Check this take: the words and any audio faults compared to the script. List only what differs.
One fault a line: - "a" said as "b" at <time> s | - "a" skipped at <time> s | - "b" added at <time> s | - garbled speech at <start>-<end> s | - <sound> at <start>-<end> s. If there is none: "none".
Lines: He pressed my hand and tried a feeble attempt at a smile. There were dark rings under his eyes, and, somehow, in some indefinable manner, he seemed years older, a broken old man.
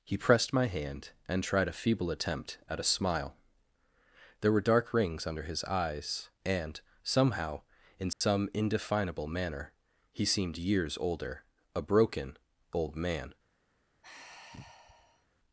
- dropout at 8.1-8.2 s
- sigh at 14.0-15.3 s